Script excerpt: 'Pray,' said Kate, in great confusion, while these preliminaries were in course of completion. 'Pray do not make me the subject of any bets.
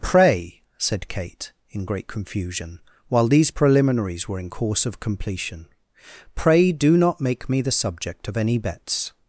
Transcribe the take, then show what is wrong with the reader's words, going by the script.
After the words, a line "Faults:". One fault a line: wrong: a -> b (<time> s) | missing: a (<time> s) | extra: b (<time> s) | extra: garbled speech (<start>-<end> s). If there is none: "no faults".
'Pray,' said Kate, in great confusion, while these preliminaries were in course of completion. 'Pray do not make me the subject of any bets.
Faults:
no faults